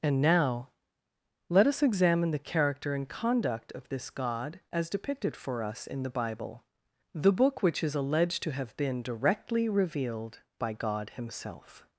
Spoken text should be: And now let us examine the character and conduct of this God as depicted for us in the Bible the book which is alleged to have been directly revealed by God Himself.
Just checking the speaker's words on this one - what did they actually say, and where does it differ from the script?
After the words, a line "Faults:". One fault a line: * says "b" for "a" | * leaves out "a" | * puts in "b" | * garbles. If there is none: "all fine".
And now let us examine the character and conduct of this God as depicted for us in the Bible the book which is alleged to have been directly revealed by God Himself.
Faults:
all fine